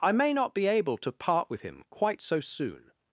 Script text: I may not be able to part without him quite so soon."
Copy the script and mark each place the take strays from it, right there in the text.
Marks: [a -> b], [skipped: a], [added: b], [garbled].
I may not be able to part [without -> with] him quite so soon."